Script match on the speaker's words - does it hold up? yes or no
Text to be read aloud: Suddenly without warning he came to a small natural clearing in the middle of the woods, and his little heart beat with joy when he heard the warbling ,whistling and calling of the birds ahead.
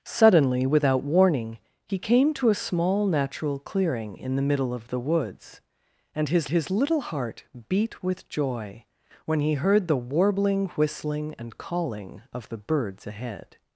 no